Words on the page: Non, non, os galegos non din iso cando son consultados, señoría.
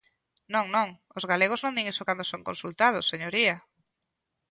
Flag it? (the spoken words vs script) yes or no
no